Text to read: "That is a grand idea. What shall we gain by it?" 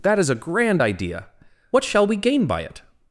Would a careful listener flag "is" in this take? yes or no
no